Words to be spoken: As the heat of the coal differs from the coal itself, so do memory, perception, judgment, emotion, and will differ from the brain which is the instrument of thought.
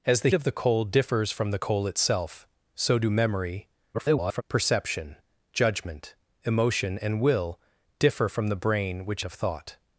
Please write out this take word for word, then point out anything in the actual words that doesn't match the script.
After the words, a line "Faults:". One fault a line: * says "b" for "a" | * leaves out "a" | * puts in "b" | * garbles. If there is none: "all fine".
As the of the coal differs from the coal itself, so do memory, [garbled] perception, judgment, emotion, and will differ from the brain which of thought.
Faults:
* leaves out "heat"
* garbles
* leaves out "is the instrument"